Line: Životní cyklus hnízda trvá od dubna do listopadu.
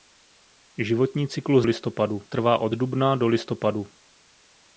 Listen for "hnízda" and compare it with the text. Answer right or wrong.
wrong